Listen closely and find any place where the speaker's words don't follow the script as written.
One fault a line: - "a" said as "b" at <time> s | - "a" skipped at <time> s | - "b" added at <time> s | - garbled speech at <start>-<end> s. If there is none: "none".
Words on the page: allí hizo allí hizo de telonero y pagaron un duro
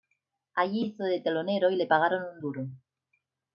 - "allí hizo" skipped at 1.0 s
- "le" added at 1.8 s